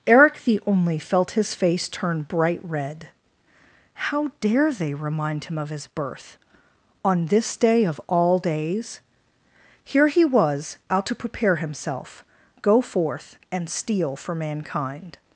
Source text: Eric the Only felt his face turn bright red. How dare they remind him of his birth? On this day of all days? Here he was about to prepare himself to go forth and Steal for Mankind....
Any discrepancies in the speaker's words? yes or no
yes